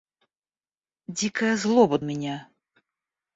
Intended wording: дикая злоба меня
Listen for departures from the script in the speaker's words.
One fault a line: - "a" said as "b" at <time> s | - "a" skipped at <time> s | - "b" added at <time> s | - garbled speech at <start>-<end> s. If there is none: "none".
none